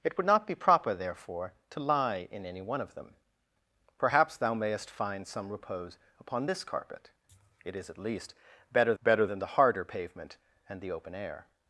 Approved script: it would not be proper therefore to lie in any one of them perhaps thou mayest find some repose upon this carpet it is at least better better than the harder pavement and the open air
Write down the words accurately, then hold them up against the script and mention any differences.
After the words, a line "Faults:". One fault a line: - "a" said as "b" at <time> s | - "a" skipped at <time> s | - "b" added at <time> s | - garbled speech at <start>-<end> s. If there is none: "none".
it would not be proper therefore to lie in any one of them perhaps thou mayest find some repose upon this carpet it is at least better better than the harder pavement and the open air
Faults:
none